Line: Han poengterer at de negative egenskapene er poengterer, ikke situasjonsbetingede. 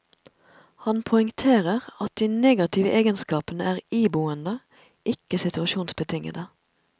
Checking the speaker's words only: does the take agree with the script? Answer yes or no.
no